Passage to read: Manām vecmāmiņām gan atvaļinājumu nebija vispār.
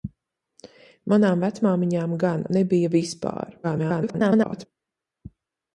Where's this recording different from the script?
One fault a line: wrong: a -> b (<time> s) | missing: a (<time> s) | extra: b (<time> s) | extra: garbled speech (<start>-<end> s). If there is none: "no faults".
missing: atvaļinājumu (2.5 s)
extra: garbled speech (3.6-4.7 s)